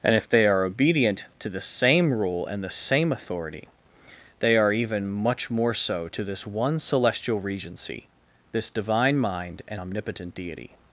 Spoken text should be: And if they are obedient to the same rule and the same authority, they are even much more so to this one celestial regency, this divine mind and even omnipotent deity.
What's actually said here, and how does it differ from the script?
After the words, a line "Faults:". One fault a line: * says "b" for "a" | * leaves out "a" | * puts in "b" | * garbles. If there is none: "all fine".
And if they are obedient to the same rule and the same authority, they are even much more so to this one celestial regency, this divine mind and omnipotent deity.
Faults:
* leaves out "even"